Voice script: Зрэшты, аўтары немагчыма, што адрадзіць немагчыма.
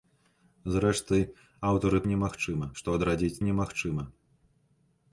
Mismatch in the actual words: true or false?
false